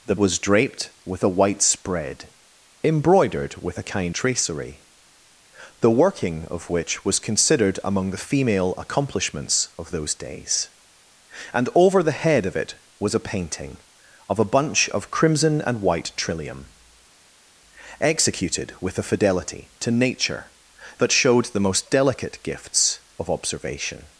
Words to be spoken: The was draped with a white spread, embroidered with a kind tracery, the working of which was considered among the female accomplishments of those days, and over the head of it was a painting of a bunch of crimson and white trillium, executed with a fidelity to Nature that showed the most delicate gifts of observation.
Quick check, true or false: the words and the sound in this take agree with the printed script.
true